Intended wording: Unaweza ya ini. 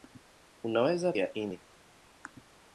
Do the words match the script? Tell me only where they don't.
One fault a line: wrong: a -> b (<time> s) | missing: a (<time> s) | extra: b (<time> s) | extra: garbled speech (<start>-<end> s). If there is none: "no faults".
no faults